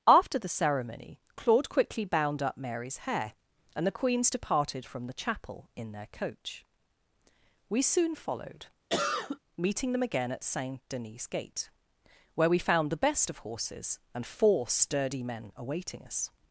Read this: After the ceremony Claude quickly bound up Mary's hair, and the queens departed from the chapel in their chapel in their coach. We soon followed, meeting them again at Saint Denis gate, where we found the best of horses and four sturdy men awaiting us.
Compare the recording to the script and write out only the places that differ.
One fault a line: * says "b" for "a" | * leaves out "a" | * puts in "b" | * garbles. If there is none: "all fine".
* leaves out "chapel in their"